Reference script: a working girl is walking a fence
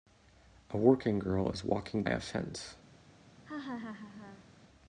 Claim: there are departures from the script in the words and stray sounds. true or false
true